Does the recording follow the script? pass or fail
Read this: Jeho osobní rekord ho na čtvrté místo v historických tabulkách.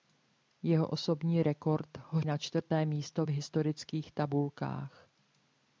pass